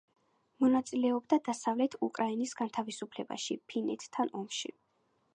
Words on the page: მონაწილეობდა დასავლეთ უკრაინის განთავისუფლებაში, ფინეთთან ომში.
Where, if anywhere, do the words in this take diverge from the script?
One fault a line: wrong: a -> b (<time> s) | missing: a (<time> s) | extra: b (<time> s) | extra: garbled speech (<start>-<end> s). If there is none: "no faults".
no faults